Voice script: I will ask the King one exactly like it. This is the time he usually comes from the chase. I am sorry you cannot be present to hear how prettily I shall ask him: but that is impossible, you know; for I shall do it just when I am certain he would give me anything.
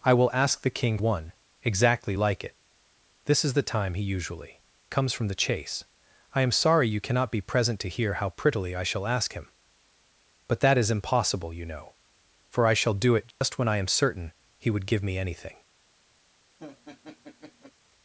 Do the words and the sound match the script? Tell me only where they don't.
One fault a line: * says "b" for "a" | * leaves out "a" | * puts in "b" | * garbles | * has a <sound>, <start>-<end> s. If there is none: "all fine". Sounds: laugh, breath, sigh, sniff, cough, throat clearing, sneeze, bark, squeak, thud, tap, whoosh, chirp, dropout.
* has a dropout, 13.3-13.4 s
* has a laugh, 16.6-17.7 s